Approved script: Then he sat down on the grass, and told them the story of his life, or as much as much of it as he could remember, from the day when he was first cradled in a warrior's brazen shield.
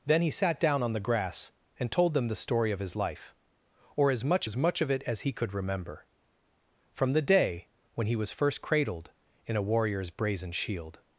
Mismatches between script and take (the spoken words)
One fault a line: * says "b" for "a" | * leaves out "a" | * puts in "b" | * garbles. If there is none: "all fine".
all fine